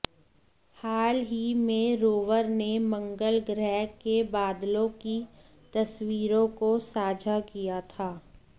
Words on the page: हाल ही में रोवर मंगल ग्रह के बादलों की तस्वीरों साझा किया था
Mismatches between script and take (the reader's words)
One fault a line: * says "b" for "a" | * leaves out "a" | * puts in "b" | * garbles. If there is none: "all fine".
* puts in "ने"
* puts in "को"